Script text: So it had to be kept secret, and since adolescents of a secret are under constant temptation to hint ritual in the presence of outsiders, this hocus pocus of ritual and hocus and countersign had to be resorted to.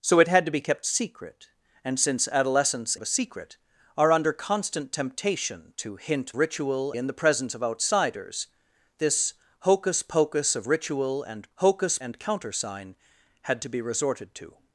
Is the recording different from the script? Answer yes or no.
no